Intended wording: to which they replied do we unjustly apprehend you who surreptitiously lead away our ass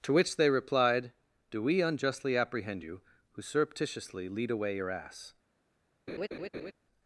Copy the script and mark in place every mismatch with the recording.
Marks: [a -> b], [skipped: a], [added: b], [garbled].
to which they replied do we unjustly apprehend you who surreptitiously lead away [our -> your] ass